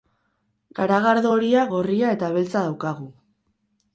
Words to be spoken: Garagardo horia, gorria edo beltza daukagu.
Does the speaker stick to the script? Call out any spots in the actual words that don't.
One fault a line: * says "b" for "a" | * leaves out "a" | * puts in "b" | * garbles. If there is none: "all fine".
* says "eta" for "edo"